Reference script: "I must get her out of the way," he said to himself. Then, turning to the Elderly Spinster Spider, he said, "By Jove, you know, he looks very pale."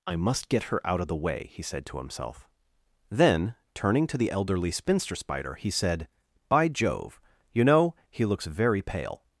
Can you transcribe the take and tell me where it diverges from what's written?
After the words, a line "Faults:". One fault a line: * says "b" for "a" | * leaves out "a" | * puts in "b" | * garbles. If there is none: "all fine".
"I must get her out of the way," he said to himself. Then, turning to the Elderly Spinster Spider, he said, "By Jove, you know, he looks very pale."
Faults:
all fine